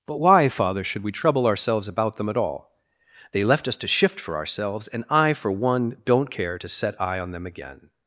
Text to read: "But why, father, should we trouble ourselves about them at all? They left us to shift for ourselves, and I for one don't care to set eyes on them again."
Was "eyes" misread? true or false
true